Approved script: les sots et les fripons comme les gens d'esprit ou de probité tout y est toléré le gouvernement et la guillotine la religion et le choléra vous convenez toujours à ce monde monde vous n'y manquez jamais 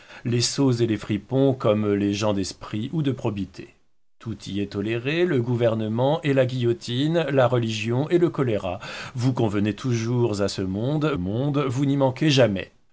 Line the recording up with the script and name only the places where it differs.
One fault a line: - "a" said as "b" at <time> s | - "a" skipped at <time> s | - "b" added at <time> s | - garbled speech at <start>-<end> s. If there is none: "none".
none